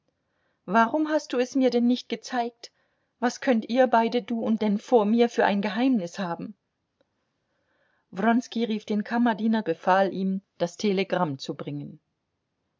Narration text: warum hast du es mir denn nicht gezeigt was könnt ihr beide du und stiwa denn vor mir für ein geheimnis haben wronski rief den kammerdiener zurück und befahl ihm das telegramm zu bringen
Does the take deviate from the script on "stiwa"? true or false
true